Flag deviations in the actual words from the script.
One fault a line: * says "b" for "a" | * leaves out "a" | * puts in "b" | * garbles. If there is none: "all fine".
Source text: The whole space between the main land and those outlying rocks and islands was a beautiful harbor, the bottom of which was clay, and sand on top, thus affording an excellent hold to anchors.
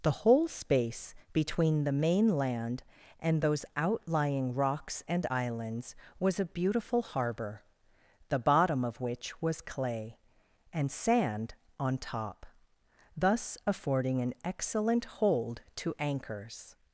all fine